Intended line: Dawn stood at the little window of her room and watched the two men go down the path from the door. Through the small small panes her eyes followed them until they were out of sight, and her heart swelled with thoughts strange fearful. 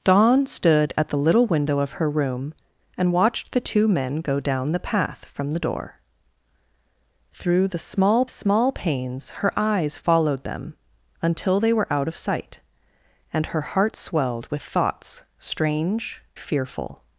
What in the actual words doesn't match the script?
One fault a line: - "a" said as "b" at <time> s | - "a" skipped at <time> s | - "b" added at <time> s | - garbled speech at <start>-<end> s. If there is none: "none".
none